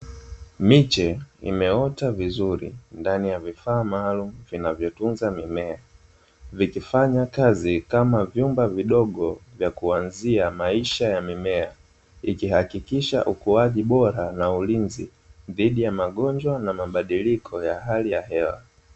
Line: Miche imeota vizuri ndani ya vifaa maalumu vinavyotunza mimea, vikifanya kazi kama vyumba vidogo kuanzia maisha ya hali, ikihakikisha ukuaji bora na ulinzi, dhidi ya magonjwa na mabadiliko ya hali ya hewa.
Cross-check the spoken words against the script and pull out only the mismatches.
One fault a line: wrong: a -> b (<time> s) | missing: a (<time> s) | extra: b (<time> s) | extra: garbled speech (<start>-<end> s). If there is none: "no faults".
extra: vya (9.6 s)
wrong: hali -> mimea (11.2 s)